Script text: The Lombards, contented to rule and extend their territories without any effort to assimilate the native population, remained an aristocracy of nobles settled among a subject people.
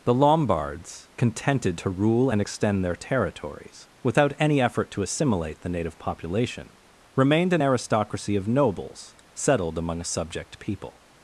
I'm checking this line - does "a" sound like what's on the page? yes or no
yes